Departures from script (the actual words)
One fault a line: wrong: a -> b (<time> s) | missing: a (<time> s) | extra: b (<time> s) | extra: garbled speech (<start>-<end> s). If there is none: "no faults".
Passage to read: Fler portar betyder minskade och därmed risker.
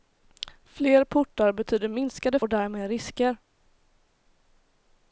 no faults